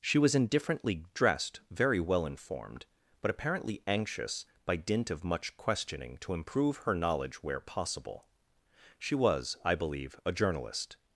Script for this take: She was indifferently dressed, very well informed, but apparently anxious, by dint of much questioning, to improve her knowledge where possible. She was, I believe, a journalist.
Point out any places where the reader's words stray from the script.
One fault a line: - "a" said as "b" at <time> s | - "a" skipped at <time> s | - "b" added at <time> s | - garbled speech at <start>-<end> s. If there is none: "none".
none